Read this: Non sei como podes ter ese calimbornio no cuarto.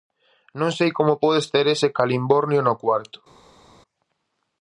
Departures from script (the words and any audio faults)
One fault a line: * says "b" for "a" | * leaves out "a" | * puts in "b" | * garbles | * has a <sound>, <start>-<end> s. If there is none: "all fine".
all fine